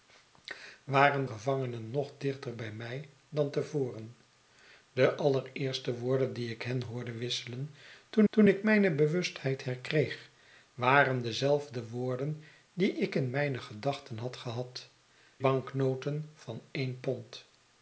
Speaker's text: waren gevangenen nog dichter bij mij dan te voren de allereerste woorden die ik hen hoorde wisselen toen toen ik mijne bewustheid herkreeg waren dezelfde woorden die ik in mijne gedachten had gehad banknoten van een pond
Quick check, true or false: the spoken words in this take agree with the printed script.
true